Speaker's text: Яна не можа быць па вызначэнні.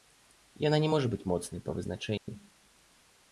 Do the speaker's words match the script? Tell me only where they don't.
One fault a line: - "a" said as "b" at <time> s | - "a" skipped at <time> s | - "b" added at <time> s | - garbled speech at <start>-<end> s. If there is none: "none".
- "моцнай" added at 1.3 s